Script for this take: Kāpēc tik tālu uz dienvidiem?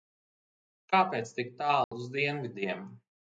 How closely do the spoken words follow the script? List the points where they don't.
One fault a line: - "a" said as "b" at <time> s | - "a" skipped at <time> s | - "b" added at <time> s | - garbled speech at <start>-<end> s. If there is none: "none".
none